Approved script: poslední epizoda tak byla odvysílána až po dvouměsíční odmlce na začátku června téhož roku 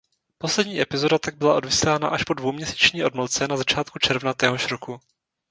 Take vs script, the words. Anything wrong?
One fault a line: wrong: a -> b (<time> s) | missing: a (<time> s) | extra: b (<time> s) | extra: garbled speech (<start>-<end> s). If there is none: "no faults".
no faults